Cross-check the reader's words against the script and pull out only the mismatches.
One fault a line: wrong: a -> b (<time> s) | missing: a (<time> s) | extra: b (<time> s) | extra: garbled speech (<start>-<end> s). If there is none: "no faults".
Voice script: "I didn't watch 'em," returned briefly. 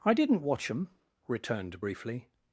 no faults